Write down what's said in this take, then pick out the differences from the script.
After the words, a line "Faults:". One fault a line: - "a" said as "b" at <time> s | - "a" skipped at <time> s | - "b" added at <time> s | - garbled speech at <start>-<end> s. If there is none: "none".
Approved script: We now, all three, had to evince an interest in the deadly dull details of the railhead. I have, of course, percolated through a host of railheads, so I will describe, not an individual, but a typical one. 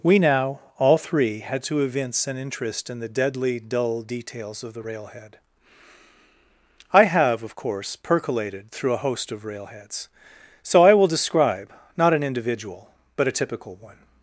We now, all three, had to evince an interest in the deadly dull details of the railhead. I have, of course, percolated through a host of railheads, so I will describe, not an individual, but a typical one.
Faults:
none